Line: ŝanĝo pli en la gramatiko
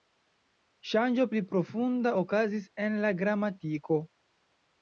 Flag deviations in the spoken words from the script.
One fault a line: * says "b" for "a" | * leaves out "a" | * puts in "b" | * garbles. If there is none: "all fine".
* puts in "profunda okazis"